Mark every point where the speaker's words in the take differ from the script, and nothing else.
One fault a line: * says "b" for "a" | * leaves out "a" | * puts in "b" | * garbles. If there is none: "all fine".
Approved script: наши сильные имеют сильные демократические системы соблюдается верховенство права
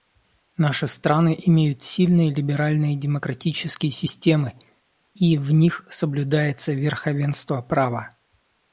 * says "страны" for "сильные"
* puts in "либеральные"
* puts in "и в них"